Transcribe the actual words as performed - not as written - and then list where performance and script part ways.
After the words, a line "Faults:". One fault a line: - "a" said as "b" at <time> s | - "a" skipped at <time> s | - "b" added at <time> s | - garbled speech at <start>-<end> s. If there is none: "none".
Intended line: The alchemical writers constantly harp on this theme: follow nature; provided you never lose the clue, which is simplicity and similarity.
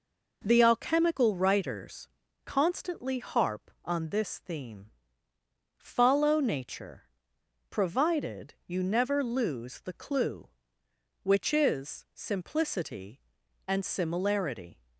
The alchemical writers constantly harp on this theme: follow nature; provided you never lose the clue, which is simplicity and similarity.
Faults:
none